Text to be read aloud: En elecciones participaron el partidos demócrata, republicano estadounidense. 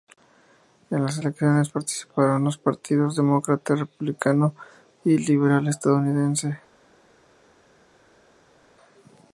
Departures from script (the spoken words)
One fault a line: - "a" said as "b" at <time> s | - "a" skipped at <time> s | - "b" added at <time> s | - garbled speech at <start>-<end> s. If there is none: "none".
- "las" added at 1.1 s
- "el" said as "los" at 2.5 s
- "y liberal" added at 5.0 s